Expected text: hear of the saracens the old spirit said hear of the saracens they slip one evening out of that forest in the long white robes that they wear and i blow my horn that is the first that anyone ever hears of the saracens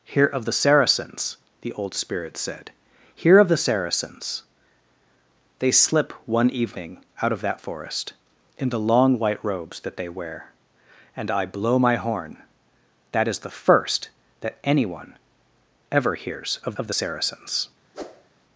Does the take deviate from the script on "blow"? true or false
false